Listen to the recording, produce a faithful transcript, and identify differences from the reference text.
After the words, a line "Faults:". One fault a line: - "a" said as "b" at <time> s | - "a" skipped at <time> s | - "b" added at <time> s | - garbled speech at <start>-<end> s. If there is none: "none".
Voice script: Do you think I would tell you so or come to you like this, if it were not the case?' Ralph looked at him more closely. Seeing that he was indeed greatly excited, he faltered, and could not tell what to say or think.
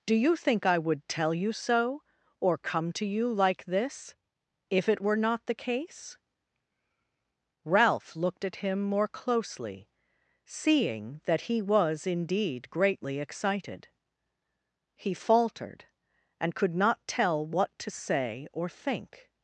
Do you think I would tell you so or come to you like this, if it were not the case?' Ralph looked at him more closely. Seeing that he was indeed greatly excited, he faltered, and could not tell what to say or think.
Faults:
none